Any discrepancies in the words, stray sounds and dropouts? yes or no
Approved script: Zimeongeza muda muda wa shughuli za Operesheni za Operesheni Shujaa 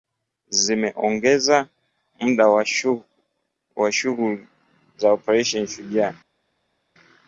yes